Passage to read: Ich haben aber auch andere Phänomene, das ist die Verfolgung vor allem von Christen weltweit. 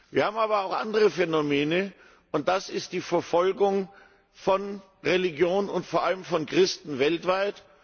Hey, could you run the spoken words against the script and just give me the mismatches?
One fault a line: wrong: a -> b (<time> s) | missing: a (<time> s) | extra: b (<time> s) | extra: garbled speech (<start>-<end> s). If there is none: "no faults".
wrong: Ich -> Wir (0.1 s)
extra: und (2.3 s)
extra: von Religion und (4.3 s)